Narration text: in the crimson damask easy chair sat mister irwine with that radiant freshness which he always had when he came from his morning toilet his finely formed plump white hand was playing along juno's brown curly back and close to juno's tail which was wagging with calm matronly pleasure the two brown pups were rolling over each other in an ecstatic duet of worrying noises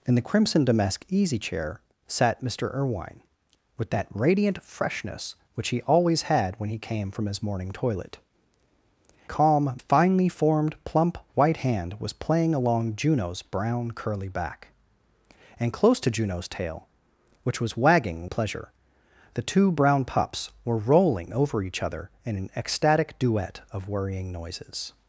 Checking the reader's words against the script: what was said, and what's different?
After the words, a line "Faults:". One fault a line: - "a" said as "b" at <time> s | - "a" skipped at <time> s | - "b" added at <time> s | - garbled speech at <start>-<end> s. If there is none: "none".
in the crimson damask easy chair sat mister irwine with that radiant freshness which he always had when he came from his morning toilet calm finely formed plump white hand was playing along juno's brown curly back and close to juno's tail which was wagging pleasure the two brown pups were rolling over each other in an ecstatic duet of worrying noises
Faults:
- "his" said as "calm" at 9.3 s
- "with calm matronly" skipped at 18.3 s